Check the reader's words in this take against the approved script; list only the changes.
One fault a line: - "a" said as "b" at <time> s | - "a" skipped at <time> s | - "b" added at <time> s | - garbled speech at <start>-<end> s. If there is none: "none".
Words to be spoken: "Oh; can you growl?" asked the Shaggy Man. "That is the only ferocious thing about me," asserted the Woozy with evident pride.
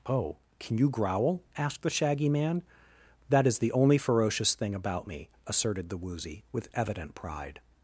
none